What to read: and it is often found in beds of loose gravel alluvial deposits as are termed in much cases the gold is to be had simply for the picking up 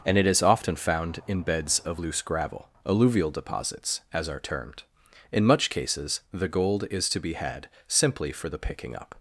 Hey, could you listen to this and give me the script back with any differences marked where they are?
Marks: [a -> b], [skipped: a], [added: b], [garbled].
and it is often found in beds of loose gravel alluvial deposits as are termed in much cases the gold is to be had simply for the picking up